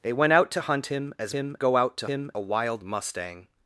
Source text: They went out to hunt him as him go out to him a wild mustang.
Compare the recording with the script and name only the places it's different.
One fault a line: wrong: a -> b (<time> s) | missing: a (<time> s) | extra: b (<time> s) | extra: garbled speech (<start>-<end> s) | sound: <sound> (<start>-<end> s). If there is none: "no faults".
no faults